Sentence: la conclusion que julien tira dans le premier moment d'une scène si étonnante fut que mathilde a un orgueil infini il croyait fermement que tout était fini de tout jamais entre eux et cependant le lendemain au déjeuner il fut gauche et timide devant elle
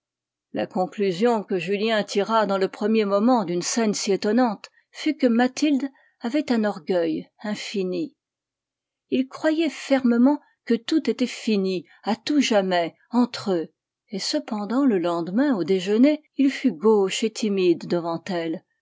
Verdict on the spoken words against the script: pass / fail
fail